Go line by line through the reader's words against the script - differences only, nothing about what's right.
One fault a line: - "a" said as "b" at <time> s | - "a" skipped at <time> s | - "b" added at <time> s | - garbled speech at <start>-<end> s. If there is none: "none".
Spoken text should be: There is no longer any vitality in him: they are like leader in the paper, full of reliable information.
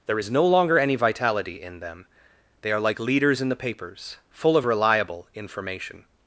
- "him" said as "them" at 1.8 s
- "leader" said as "leaders" at 3.0 s
- "paper" said as "papers" at 3.5 s